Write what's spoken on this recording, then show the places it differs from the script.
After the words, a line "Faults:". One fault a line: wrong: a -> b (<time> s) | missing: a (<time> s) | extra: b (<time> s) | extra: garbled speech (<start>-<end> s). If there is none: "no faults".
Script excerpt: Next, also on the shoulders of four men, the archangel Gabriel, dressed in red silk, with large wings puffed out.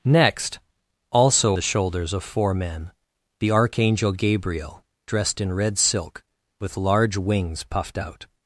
Next, also the shoulders of four men, the archangel Gabriel, dressed in red silk, with large wings puffed out.
Faults:
missing: on (1.6 s)